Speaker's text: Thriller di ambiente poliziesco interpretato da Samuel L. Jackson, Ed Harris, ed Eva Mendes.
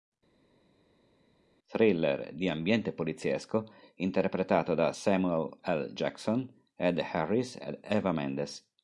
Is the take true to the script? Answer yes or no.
yes